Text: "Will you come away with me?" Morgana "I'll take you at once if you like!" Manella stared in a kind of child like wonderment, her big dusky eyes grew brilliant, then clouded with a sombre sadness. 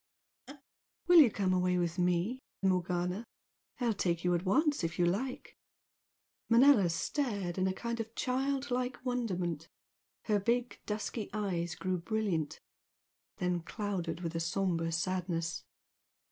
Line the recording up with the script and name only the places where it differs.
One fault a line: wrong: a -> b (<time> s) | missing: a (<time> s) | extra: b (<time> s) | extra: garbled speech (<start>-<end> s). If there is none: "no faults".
no faults